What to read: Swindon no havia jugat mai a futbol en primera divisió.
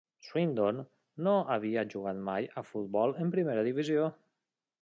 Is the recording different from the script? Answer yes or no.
no